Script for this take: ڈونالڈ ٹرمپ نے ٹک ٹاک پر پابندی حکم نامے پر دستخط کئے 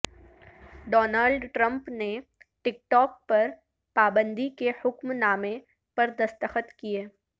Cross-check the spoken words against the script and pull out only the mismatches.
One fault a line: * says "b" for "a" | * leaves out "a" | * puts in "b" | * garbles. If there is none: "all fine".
* puts in "کے"